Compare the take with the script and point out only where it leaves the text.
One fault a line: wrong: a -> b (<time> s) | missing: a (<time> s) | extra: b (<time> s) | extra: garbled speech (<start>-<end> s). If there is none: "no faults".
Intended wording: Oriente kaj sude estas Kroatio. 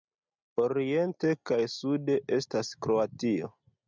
no faults